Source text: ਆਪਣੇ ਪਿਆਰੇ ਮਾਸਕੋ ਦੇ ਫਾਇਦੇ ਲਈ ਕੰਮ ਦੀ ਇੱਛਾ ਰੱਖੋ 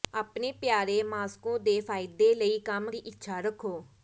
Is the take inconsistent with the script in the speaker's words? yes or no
no